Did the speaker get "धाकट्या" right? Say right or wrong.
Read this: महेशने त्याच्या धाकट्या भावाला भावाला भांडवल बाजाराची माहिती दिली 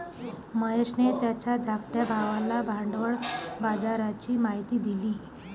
right